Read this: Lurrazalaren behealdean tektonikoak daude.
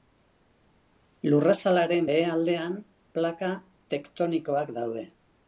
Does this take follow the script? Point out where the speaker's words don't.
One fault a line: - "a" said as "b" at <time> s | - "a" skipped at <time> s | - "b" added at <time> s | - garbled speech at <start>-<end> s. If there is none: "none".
- "plaka" added at 3.2 s